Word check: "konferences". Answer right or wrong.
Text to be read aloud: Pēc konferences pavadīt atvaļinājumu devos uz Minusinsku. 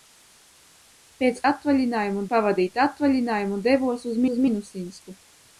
wrong